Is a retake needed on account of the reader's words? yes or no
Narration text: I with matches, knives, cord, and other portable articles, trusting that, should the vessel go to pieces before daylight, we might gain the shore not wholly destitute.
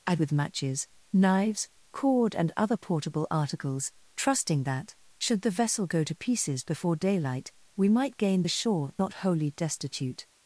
no